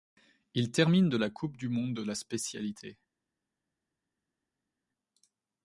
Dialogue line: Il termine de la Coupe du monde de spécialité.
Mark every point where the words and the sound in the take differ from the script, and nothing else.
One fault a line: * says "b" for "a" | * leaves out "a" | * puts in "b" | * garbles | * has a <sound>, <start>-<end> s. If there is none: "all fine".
* puts in "la"